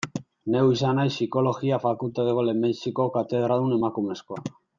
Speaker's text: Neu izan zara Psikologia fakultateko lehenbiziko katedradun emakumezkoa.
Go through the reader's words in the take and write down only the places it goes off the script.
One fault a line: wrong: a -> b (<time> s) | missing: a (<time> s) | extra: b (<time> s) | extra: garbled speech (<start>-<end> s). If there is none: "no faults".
wrong: zara -> naiz (1.0 s)